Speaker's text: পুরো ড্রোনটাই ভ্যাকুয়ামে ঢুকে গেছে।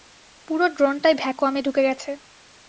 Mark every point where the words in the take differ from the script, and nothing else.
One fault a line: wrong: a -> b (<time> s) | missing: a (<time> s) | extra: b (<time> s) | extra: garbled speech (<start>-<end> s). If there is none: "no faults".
no faults